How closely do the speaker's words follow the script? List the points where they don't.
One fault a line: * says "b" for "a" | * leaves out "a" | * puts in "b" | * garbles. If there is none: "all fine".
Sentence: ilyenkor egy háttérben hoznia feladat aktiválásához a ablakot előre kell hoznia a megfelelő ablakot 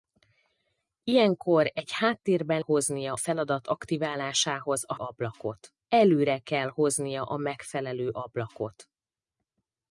all fine